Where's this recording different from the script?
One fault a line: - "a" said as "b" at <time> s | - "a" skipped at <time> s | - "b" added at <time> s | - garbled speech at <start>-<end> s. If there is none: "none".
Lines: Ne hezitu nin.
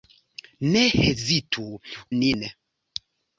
none